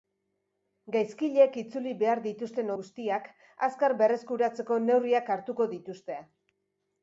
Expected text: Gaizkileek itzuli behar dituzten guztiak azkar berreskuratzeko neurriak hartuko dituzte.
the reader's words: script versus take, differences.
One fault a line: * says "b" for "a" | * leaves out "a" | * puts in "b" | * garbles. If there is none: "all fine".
all fine